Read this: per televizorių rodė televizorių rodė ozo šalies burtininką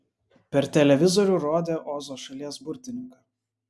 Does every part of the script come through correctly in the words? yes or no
no